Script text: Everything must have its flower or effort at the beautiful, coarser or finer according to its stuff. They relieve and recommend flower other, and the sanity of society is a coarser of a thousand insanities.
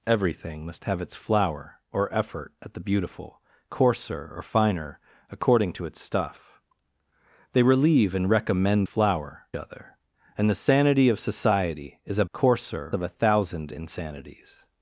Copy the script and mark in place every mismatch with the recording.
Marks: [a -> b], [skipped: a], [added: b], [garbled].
Everything must have its flower or effort at the beautiful, coarser or finer according to its stuff. They relieve and recommend flower other, and the sanity of society is a coarser of a thousand insanities.